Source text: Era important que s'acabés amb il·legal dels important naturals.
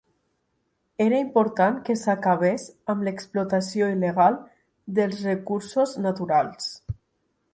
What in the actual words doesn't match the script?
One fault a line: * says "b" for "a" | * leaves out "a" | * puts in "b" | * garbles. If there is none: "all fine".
* puts in "l'explotació"
* says "recursos" for "important"